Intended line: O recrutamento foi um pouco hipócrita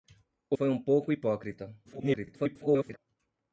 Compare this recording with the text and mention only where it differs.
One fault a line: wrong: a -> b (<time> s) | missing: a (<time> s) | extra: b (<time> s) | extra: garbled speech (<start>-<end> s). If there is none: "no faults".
missing: recrutamento (0.6 s)
extra: garbled speech (1.8-3.0 s)